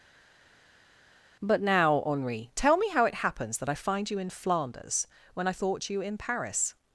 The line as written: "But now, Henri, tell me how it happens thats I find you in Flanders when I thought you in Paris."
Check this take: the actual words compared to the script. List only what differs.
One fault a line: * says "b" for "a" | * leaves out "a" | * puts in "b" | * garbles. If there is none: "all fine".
* says "that" for "thats"